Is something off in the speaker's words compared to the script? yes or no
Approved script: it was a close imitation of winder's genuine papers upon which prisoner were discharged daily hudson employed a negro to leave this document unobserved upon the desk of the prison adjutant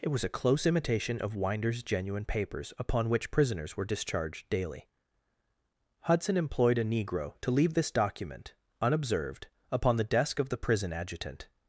yes